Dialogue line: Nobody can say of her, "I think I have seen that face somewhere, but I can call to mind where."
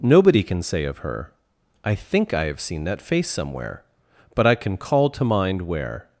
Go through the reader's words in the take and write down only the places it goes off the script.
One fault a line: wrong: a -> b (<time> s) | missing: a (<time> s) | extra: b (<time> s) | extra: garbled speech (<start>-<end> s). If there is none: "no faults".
no faults